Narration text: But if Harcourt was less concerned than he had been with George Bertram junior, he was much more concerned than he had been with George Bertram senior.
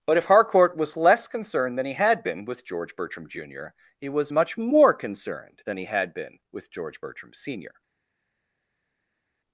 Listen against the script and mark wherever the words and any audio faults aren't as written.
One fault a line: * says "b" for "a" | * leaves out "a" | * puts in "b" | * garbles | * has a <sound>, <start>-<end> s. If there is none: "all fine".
all fine